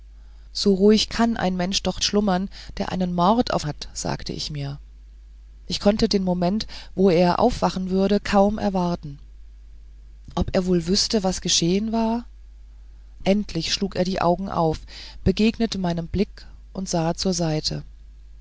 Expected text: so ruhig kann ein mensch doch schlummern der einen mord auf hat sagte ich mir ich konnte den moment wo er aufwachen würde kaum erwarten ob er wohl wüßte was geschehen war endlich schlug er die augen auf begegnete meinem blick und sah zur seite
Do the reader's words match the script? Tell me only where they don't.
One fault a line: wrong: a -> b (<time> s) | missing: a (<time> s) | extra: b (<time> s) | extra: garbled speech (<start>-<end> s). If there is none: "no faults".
no faults